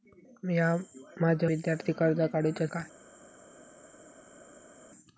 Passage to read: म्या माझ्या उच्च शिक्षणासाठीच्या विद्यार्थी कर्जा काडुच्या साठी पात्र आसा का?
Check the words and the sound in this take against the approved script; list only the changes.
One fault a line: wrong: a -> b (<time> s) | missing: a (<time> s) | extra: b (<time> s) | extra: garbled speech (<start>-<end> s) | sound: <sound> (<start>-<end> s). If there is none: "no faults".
missing: उच्च शिक्षणासाठीच्या (1.5 s)
missing: साठी पात्र आसा (2.7 s)